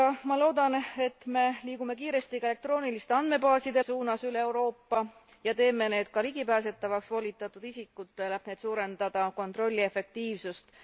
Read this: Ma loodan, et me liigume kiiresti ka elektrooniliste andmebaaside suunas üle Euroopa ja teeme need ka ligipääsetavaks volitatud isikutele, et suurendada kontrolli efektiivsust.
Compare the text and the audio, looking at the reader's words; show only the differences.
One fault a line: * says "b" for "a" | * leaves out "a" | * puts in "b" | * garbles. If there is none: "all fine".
all fine